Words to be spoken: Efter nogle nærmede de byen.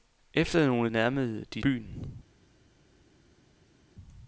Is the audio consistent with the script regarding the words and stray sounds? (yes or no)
yes